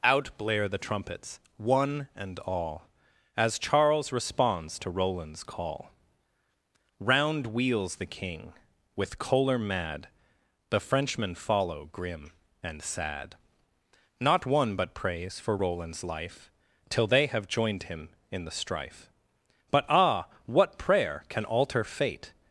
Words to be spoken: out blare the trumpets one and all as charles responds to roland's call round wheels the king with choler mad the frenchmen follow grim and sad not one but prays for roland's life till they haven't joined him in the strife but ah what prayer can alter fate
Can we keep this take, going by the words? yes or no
no